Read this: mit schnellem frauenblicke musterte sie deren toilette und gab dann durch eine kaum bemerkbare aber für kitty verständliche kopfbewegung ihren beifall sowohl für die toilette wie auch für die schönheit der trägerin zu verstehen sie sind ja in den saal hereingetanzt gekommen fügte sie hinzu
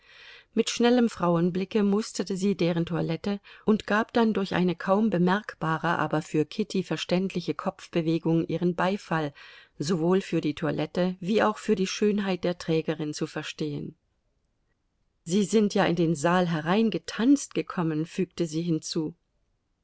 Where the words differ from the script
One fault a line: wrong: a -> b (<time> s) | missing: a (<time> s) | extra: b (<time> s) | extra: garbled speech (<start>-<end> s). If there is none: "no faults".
no faults